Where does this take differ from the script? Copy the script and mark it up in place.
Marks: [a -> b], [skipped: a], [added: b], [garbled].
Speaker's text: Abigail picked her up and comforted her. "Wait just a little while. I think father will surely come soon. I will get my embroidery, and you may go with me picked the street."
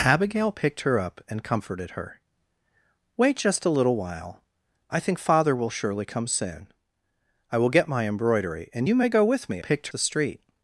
Abigail picked her up and comforted her. "Wait just a little while. I think father will surely come soon. I will get my embroidery, and you may go with me picked the street."